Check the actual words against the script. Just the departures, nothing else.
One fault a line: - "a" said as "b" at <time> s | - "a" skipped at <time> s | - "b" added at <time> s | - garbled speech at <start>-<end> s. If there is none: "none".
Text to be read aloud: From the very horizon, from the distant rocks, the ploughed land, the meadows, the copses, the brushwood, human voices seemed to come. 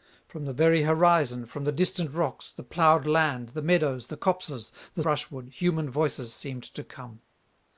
none